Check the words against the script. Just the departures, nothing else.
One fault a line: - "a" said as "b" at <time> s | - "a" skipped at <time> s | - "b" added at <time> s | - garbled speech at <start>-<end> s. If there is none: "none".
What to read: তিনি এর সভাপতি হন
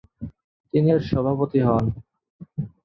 none